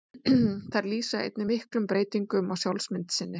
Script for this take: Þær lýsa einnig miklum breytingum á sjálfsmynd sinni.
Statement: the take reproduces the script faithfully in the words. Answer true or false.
true